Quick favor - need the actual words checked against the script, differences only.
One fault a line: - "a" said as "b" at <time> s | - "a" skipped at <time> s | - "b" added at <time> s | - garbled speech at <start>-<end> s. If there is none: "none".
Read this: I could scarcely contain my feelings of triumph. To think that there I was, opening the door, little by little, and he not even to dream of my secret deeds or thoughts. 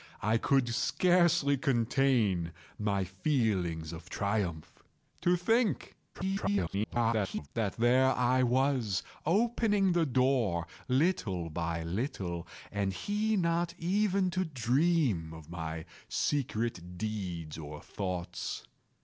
- garbled speech at 6.1-7.5 s